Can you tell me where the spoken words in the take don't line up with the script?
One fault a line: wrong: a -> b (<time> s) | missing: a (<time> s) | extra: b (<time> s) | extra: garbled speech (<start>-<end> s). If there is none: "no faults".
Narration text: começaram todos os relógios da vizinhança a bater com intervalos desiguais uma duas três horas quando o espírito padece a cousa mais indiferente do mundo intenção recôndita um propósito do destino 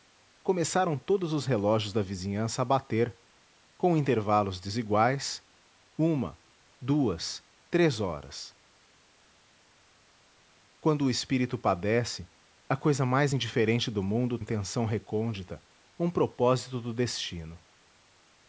no faults